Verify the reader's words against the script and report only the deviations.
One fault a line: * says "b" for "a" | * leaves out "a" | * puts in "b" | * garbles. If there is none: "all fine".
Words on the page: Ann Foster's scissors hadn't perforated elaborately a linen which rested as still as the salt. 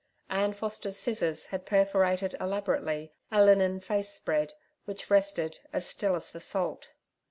* says "had" for "hadn't"
* puts in "face spread"